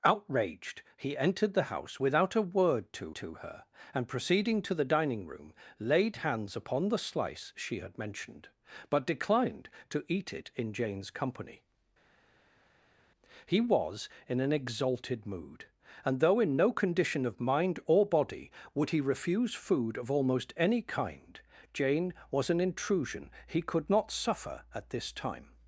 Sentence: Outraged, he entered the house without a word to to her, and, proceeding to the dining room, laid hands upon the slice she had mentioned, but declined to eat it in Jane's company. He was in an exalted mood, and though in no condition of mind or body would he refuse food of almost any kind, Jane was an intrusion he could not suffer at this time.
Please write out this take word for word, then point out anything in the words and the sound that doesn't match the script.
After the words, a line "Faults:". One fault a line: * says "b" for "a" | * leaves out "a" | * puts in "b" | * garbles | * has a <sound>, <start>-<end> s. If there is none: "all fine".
Outraged, he entered the house without a word to to her, and, proceeding to the dining room, laid hands upon the slice she had mentioned, but declined to eat it in Jane's company. He was in an exalted mood, and though in no condition of mind or body would he refuse food of almost any kind, Jane was an intrusion he could not suffer at this time.
Faults:
all fine